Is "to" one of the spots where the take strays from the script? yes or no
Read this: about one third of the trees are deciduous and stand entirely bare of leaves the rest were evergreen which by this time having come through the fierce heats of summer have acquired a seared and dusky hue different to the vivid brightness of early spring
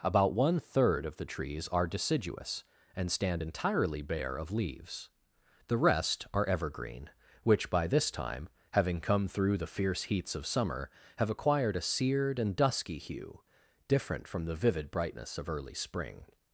yes